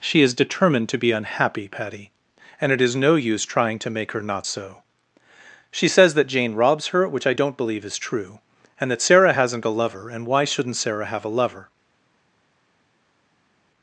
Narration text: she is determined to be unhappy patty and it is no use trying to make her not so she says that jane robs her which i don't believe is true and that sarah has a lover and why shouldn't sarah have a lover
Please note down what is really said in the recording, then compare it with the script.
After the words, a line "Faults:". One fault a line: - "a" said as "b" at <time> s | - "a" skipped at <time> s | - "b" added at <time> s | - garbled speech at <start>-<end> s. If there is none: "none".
she is determined to be unhappy patty and it is no use trying to make her not so she says that jane robs her which i don't believe is true and that sarah hasn't a lover and why shouldn't sarah have a lover
Faults:
- "has" said as "hasn't" at 9.3 s